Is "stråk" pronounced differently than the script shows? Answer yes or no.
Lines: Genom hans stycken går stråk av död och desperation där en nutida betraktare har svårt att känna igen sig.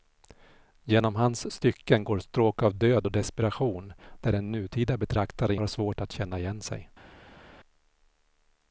no